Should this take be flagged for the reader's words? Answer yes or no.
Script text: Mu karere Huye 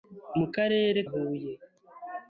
no